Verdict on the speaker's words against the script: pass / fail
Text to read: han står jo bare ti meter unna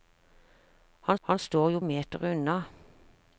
fail